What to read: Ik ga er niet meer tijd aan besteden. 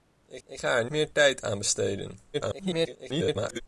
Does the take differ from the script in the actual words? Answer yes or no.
yes